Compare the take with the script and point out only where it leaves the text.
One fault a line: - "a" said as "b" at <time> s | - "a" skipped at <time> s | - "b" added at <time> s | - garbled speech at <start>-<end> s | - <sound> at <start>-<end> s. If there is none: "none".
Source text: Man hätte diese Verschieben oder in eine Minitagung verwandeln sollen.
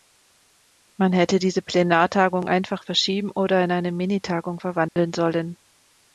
- "Plenartagung einfach" added at 1.6 s
- dropout at 4.9-5.0 s